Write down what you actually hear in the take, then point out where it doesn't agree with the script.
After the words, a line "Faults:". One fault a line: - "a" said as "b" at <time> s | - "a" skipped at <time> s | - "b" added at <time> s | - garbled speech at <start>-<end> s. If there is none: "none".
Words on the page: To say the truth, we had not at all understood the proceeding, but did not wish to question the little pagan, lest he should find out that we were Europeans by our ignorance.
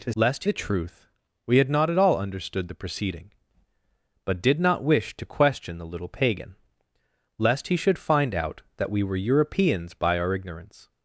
To lest the truth, we had not at all understood the proceeding, but did not wish to question the little pagan, lest he should find out that we were Europeans by our ignorance.
Faults:
- "say" said as "lest" at 0.2 s